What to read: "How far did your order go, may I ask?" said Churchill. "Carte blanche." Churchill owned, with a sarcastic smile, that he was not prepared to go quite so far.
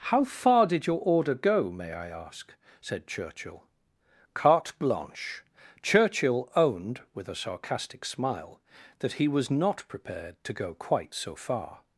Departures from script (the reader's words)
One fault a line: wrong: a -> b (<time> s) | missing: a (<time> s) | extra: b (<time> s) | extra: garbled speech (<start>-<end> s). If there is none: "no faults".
no faults